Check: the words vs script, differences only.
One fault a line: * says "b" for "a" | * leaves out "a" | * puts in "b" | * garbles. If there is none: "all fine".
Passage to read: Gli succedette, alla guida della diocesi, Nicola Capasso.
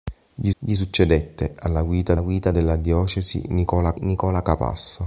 * puts in "gli"
* puts in "guida"
* puts in "Nicola"